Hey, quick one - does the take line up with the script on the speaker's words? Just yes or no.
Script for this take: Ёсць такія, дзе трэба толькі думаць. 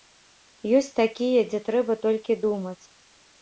yes